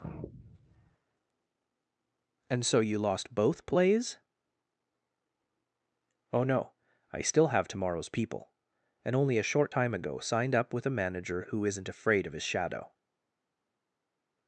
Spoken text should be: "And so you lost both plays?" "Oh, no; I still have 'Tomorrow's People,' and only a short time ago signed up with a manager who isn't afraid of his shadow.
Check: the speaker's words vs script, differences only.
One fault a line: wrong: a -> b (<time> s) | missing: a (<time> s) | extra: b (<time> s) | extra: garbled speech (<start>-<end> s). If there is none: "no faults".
no faults